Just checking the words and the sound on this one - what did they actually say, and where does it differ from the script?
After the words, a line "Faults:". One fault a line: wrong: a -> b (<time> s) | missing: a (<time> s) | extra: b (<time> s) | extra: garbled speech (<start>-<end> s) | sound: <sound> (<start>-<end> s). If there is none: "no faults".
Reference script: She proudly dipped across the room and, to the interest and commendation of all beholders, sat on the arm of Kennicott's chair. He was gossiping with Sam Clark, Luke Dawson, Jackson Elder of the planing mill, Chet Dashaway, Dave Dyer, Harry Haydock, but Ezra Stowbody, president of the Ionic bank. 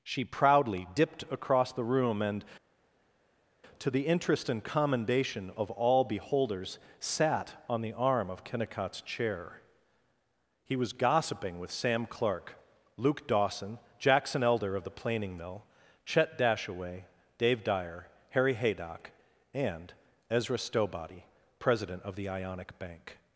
She proudly dipped across the room and, to the interest and commendation of all beholders, sat on the arm of Kennicott's chair. He was gossiping with Sam Clark, Luke Dawson, Jackson Elder of the planing mill, Chet Dashaway, Dave Dyer, Harry Haydock, and Ezra Stowbody, president of the Ionic bank.
Faults:
wrong: but -> and (19.5 s)